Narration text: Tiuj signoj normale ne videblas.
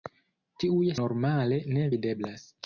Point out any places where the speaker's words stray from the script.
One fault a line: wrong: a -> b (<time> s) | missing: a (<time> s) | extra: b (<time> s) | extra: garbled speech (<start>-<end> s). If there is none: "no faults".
missing: signoj (0.9 s)